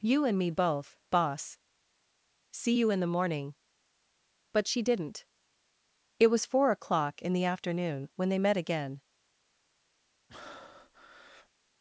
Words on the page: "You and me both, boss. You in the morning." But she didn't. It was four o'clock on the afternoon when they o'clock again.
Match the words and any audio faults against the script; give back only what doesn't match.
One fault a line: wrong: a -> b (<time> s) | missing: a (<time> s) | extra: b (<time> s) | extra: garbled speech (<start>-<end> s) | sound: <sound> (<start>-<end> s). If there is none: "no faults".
extra: See (2.5 s)
wrong: on -> in (7.2 s)
wrong: o'clock -> met (8.4 s)
sound: breath (10.3-11.5 s)